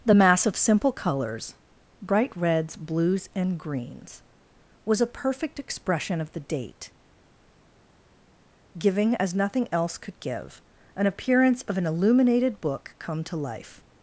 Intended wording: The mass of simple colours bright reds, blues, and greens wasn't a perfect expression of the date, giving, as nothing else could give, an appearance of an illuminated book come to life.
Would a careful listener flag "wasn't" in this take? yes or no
yes